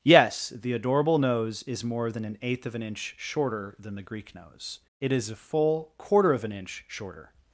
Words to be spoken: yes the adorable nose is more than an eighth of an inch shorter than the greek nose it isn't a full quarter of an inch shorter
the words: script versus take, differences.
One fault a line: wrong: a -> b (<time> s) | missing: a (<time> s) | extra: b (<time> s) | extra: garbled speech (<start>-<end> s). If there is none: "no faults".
wrong: isn't -> is (5.1 s)